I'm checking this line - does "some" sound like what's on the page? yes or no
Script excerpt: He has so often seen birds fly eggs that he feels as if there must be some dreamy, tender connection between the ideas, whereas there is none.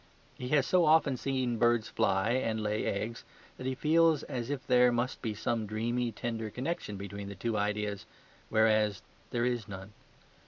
yes